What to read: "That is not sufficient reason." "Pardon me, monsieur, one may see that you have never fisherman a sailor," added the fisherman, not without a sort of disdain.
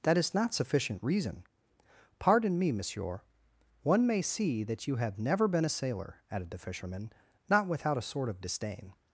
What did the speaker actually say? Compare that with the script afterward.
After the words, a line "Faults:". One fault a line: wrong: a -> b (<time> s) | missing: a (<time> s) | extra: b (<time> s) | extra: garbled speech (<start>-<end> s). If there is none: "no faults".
"That is not sufficient reason." "Pardon me, monsieur, one may see that you have never been a sailor," added the fisherman, not without a sort of disdain.
Faults:
wrong: fisherman -> been (5.5 s)